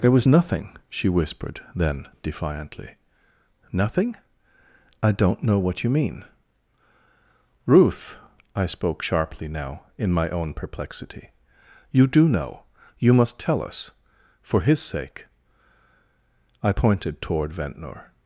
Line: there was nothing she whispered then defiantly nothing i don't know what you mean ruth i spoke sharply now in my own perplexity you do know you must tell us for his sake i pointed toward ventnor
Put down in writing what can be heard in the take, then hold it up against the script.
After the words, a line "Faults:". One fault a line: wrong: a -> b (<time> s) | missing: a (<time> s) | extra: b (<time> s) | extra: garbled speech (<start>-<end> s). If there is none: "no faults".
there was nothing she whispered then defiantly nothing i don't know what you mean ruth i spoke sharply now in my own perplexity you do know you must tell us for his sake i pointed toward ventnor
Faults:
no faults